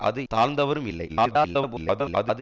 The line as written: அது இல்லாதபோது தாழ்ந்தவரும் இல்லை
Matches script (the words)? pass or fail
fail